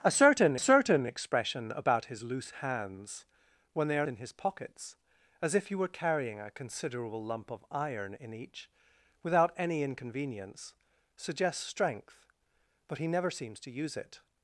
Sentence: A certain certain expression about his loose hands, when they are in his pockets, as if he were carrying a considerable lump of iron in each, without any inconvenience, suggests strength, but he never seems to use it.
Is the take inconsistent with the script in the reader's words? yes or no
no